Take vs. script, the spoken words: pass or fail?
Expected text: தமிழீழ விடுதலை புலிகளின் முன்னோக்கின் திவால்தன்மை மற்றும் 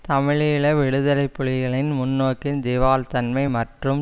pass